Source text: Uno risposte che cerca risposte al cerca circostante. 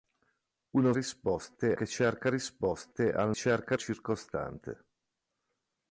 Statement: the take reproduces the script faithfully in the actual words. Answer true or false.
true